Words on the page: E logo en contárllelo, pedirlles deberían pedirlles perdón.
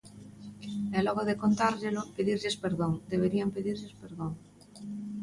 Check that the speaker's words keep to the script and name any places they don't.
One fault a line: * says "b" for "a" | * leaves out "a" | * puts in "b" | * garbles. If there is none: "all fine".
* says "de" for "en"
* puts in "perdón"